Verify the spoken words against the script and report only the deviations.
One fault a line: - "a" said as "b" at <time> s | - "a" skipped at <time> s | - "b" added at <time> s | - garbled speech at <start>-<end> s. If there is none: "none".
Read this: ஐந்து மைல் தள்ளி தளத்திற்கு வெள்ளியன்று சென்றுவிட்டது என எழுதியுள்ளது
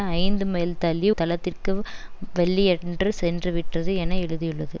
none